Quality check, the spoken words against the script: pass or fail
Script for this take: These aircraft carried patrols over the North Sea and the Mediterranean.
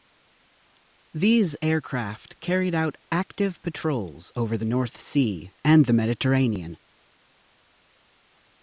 fail